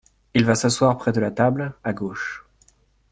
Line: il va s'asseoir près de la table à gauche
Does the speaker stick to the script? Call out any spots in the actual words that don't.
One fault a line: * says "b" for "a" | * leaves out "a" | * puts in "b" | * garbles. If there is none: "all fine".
all fine